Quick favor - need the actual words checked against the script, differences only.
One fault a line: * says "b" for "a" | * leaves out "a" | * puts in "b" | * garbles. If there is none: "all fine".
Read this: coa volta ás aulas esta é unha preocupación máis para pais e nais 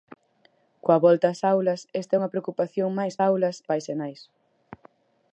* says "aulas" for "para"